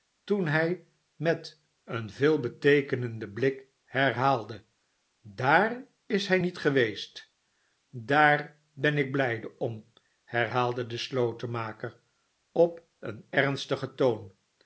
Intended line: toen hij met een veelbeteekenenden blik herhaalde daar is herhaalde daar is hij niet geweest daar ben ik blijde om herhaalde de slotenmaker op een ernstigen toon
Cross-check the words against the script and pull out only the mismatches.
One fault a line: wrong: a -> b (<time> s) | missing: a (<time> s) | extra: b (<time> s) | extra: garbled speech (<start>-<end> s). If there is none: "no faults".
missing: herhaalde daar is (6.3 s)